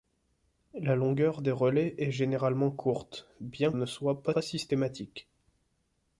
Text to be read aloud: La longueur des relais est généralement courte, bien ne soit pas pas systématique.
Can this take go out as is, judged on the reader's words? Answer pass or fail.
pass